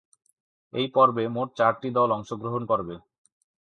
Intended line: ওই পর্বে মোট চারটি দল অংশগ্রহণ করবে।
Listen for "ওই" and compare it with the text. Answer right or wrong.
wrong